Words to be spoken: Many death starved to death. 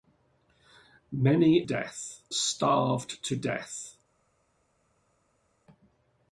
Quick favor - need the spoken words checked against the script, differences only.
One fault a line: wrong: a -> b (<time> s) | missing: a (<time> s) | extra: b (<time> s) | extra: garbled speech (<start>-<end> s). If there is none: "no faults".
no faults